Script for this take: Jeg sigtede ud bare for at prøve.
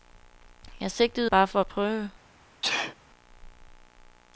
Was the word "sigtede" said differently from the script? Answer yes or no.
no